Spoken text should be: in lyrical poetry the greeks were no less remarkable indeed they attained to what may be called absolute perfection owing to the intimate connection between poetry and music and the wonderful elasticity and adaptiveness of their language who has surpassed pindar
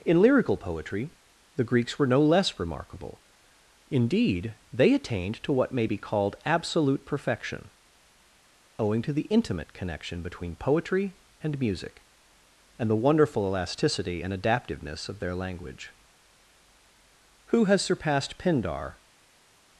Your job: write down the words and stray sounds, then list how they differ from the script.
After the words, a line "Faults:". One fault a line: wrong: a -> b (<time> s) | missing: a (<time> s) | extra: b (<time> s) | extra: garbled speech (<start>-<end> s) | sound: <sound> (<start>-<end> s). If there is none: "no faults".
in lyrical poetry the greeks were no less remarkable indeed they attained to what may be called absolute perfection owing to the intimate connection between poetry and music and the wonderful elasticity and adaptiveness of their language who has surpassed pindar
Faults:
no faults